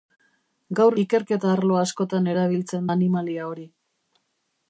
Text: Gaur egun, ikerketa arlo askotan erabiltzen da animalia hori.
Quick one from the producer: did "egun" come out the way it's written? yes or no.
no